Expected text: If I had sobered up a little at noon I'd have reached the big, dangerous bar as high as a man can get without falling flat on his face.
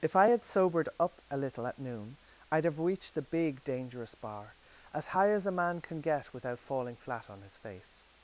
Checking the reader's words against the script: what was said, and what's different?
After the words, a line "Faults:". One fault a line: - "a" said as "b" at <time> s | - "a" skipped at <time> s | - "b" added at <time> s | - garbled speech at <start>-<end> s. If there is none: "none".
If I had sobered up a little at noon I'd have reached the big, dangerous bar as high as a man can get without falling flat on his face.
Faults:
none